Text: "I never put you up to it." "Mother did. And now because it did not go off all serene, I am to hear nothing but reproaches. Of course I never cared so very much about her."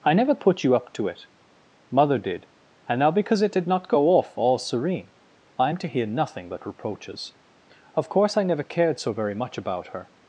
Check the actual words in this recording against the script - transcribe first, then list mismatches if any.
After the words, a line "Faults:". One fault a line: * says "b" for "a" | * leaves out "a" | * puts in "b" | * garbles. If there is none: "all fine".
"I never put you up to it." "Mother did. And now because it did not go off all serene, I am to hear nothing but reproaches. Of course I never cared so very much about her."
Faults:
all fine